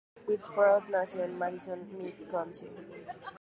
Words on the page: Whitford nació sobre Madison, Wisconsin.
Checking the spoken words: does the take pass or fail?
fail